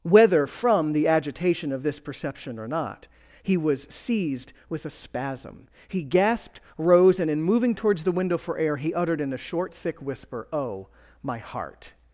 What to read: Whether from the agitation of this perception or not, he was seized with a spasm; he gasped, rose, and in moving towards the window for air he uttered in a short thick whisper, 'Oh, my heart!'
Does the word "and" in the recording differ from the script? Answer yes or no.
no